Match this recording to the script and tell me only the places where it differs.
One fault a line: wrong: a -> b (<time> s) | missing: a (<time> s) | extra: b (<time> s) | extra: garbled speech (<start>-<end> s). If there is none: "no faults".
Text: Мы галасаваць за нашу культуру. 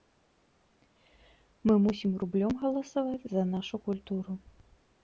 extra: мусім рублём (1.9 s)